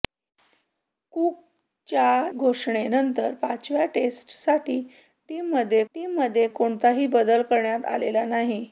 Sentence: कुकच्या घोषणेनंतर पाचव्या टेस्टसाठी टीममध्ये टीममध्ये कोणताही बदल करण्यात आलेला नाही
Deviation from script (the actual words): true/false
false